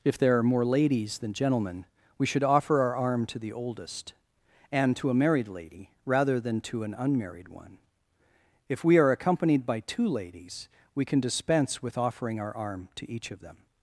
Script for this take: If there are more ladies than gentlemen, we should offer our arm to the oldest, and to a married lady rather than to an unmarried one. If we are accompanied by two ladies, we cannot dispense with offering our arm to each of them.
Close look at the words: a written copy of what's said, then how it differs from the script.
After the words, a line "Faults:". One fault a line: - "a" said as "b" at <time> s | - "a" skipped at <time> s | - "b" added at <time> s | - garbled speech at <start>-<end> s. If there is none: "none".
If there are more ladies than gentlemen, we should offer our arm to the oldest, and to a married lady rather than to an unmarried one. If we are accompanied by two ladies, we can dispense with offering our arm to each of them.
Faults:
- "cannot" said as "can" at 11.1 s